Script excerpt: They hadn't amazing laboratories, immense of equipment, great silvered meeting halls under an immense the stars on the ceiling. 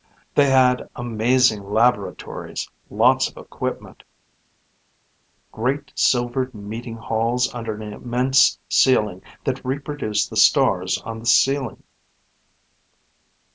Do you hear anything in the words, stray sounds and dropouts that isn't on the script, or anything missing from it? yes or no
yes